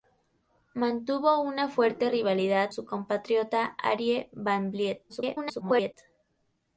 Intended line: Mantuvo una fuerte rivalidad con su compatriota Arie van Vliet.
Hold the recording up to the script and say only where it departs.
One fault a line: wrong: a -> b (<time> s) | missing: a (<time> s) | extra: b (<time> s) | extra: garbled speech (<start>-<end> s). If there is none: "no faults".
missing: con (2.7 s)
extra: garbled speech (5.1-5.9 s)